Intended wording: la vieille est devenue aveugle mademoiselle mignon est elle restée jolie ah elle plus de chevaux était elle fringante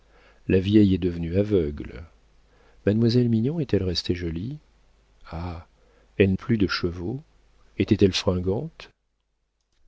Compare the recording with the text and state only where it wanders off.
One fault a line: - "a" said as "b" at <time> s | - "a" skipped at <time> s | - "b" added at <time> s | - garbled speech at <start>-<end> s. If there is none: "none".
none